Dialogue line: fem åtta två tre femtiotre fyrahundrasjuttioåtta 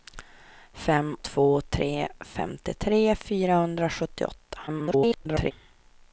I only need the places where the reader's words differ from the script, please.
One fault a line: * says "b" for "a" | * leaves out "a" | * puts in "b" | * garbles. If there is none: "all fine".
* leaves out "åtta"
* garbles